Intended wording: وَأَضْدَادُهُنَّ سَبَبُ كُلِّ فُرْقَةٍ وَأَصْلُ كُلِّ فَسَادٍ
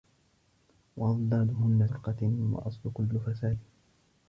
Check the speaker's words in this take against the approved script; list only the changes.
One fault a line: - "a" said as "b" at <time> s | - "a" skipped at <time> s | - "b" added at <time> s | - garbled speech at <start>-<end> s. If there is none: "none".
- "سَبَبُ كُلِّ" skipped at 1.9 s